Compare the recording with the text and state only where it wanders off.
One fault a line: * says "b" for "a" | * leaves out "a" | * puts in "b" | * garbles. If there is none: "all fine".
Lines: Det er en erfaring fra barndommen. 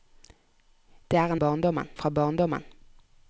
* says "barndommen" for "erfaring"